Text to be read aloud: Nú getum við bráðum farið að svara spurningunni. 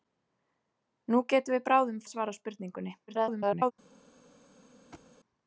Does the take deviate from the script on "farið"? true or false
true